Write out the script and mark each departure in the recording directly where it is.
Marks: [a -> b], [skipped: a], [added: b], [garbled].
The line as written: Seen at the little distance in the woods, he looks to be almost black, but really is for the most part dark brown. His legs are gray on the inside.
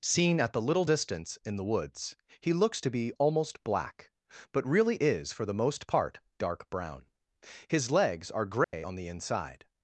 Seen at the little distance in the woods, he looks to be almost black, but really is for the most part dark brown. His legs are gray on the inside.